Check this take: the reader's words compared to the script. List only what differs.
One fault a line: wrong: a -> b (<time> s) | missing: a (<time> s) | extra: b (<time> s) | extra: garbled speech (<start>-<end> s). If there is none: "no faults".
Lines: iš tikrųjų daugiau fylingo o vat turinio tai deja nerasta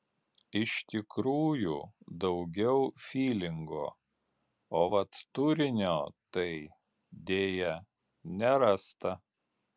no faults